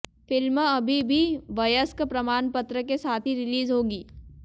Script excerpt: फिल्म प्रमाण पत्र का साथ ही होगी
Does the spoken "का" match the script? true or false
false